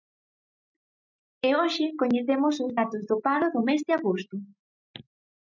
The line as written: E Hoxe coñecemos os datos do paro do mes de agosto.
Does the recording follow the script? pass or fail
pass